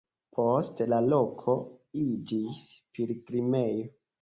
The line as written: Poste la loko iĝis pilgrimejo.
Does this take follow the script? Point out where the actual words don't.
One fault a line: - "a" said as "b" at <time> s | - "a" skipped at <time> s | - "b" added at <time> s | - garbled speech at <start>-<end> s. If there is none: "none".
none